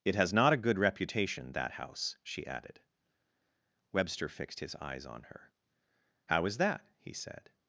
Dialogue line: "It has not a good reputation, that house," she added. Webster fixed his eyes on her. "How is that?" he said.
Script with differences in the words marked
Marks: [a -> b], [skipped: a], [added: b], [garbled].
"It has not a good reputation, that house," she added. Webster fixed his eyes on her. "How is that?" he said.